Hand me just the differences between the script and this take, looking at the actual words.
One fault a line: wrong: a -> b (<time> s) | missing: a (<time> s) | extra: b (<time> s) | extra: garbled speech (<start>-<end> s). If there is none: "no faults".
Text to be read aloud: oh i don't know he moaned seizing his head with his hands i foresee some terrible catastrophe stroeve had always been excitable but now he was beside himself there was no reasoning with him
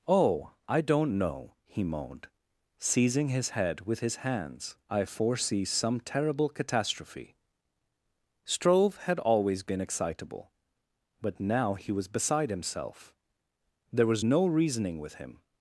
no faults